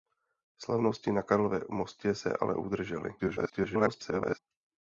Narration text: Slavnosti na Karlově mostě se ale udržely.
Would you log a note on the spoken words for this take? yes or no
yes